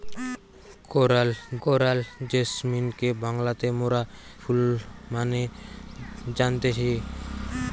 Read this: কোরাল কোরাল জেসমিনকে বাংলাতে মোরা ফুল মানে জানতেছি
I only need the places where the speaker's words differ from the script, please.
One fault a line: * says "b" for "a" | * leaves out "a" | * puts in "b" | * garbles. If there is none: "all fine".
all fine